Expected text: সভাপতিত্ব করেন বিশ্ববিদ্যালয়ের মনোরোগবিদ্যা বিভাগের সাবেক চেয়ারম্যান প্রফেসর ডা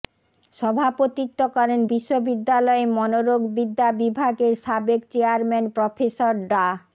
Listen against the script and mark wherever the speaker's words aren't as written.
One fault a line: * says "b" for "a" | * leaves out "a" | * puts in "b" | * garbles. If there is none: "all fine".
all fine